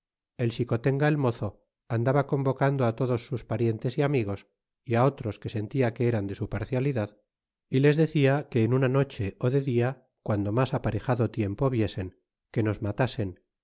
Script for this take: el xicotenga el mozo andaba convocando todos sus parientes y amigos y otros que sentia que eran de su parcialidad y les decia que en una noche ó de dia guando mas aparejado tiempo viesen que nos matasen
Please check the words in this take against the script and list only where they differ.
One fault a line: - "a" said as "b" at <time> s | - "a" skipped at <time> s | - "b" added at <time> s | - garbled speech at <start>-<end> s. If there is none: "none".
none